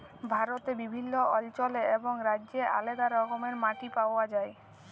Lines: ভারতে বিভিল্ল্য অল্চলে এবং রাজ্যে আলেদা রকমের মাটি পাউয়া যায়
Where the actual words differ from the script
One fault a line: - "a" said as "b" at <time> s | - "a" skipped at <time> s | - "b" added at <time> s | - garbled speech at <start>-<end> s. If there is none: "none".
none